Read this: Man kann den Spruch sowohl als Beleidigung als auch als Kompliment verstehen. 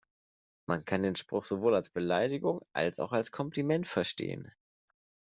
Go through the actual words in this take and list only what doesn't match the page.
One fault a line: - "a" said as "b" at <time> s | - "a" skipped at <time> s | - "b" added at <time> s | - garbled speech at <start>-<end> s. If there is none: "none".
none